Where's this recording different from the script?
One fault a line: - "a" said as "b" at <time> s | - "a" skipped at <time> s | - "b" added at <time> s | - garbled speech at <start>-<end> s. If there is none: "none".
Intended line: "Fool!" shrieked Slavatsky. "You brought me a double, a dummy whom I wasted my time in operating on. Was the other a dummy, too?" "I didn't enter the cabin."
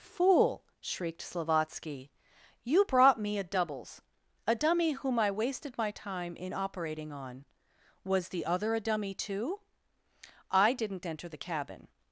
- "double" said as "doubles" at 3.4 s